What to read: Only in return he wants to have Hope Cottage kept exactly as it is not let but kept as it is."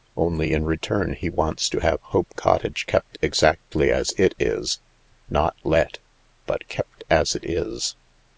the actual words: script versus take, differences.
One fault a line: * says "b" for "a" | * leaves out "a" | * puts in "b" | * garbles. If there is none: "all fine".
all fine